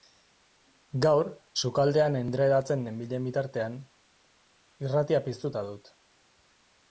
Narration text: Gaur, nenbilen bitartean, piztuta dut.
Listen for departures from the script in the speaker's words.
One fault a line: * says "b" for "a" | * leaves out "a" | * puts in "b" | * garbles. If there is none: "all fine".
* puts in "sukaldean endredatzen"
* puts in "irratia"